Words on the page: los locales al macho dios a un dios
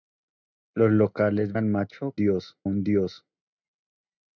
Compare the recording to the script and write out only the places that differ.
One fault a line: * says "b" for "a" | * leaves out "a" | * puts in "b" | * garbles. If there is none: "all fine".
all fine